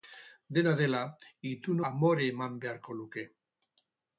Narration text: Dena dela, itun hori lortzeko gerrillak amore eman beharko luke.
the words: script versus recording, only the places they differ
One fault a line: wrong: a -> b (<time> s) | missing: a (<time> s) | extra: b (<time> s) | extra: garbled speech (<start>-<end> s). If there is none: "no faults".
missing: hori lortzeko gerrillak (1.8 s)